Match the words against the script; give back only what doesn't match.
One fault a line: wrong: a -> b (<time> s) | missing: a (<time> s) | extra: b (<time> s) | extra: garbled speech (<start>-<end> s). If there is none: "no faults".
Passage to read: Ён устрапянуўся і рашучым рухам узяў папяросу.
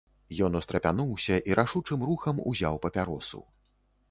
no faults